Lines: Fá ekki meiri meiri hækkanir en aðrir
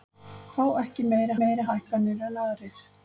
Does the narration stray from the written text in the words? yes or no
no